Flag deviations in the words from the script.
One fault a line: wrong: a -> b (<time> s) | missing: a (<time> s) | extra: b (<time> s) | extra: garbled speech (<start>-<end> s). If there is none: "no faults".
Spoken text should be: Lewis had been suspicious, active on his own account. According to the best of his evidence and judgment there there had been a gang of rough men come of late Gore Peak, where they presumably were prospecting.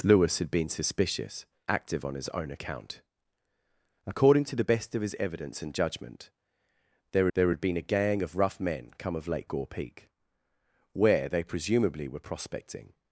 no faults